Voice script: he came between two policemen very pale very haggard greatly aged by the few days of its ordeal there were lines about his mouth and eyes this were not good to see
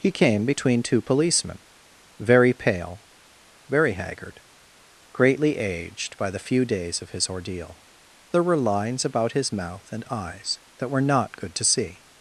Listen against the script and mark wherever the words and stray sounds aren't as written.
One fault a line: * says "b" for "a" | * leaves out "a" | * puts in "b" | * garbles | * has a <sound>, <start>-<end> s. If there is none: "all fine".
* says "his" for "its"
* says "that" for "this"